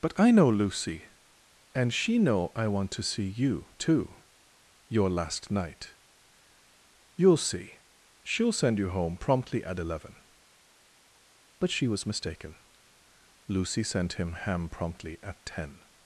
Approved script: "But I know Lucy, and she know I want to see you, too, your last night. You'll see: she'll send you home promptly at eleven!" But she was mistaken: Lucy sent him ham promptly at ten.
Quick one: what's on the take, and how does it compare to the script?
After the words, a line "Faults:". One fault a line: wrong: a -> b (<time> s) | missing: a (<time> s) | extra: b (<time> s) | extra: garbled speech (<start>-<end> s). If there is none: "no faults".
"But I know Lucy, and she know I want to see you, too, your last night. You'll see: she'll send you home promptly at eleven!" But she was mistaken: Lucy sent him ham promptly at ten.
Faults:
no faults